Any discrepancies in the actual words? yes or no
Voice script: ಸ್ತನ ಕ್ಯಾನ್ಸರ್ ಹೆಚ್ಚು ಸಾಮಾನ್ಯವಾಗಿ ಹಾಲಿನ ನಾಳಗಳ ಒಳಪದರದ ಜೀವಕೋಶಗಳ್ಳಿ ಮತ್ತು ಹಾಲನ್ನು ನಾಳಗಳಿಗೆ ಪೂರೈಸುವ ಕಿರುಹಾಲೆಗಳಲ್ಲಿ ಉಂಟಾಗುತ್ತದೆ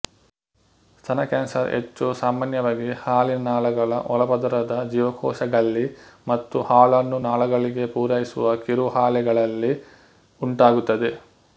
no